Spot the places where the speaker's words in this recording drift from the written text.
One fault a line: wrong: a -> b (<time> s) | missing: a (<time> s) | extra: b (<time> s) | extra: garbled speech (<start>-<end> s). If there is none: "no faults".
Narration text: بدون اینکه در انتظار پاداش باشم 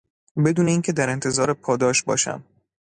no faults